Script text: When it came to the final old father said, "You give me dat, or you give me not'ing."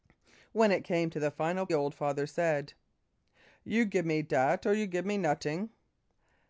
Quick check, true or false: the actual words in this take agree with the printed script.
true